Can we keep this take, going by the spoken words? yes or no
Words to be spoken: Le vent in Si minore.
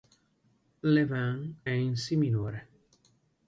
yes